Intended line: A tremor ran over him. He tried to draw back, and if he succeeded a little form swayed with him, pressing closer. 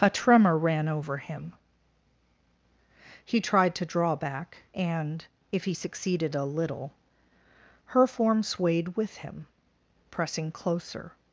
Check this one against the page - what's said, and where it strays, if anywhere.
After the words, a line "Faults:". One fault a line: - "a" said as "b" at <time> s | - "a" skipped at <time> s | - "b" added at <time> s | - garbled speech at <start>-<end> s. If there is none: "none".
A tremor ran over him. He tried to draw back, and if he succeeded a little her form swayed with him, pressing closer.
Faults:
- "her" added at 7.9 s